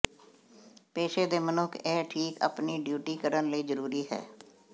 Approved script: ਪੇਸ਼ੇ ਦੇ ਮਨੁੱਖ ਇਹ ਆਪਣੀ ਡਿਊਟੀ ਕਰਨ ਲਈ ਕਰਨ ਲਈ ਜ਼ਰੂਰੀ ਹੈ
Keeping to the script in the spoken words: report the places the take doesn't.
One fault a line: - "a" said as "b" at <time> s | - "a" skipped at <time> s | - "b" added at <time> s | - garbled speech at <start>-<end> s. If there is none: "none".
- "ਠੀਕ" added at 2.1 s
- "ਕਰਨ ਲਈ" skipped at 3.6 s